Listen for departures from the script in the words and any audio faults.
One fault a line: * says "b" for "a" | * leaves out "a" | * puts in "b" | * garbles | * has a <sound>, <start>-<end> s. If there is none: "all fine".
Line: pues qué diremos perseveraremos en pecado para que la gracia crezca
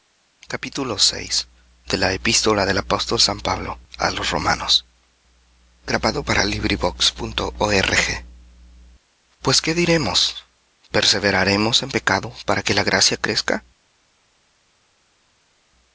all fine